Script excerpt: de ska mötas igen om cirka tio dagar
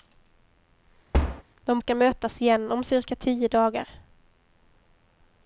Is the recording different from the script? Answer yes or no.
no